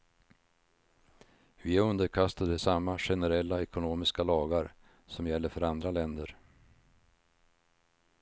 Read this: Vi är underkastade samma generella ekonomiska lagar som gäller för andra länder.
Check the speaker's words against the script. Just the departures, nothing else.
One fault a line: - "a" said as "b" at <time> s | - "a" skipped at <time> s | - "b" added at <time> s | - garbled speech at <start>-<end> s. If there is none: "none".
none